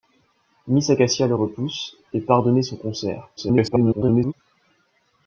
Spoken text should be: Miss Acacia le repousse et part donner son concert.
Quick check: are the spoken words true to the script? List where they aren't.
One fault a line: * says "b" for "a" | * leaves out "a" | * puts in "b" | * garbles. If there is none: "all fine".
* garbles